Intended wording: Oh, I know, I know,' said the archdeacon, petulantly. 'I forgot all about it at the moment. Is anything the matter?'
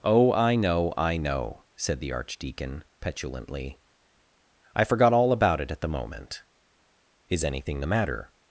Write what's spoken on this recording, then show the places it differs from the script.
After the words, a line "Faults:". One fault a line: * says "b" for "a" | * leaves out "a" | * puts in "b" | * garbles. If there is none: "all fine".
Oh, I know, I know,' said the archdeacon, petulantly. 'I forgot all about it at the moment. Is anything the matter?'
Faults:
all fine